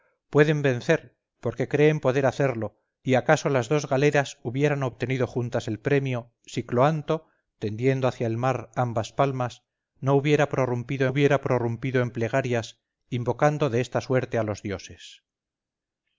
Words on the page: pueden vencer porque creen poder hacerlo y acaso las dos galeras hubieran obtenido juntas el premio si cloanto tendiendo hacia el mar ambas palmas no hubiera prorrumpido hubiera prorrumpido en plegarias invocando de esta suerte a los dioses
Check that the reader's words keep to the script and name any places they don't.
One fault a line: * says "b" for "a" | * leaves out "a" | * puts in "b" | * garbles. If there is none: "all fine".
all fine